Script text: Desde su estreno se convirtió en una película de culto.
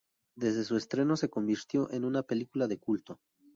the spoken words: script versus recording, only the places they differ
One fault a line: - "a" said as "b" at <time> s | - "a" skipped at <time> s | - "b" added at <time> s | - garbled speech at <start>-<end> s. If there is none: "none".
none